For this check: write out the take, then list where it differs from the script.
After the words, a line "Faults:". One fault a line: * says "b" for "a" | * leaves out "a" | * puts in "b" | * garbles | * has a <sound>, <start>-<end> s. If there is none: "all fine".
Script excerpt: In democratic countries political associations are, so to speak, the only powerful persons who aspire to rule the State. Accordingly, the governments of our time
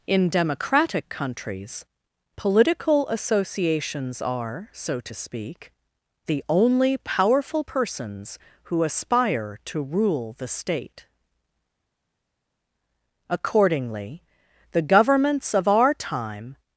In democratic countries political associations are, so to speak, the only powerful persons who aspire to rule the State. Accordingly, the governments of our time
Faults:
all fine